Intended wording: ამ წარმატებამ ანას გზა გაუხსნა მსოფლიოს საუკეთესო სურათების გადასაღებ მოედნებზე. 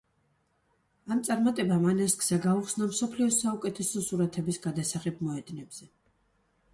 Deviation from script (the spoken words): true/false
false